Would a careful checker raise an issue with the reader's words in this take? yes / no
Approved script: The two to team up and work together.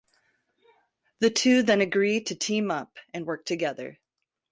yes